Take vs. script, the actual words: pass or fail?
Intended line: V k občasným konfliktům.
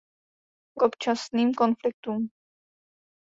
pass